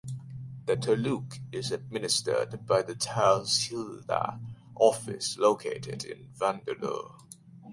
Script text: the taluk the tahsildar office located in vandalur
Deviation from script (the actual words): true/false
true